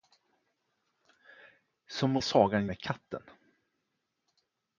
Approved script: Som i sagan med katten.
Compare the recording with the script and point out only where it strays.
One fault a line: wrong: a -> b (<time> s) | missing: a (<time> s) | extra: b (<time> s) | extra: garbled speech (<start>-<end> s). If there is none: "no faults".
no faults